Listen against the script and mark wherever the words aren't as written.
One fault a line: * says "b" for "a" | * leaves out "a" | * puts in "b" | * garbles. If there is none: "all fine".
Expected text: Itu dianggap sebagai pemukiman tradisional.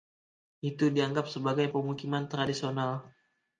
all fine